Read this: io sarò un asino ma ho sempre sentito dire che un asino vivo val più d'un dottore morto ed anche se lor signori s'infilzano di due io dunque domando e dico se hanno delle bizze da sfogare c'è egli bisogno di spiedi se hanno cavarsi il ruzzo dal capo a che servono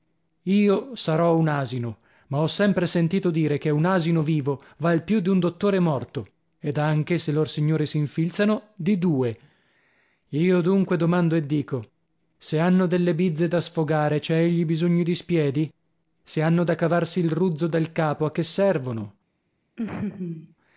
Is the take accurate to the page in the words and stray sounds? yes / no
no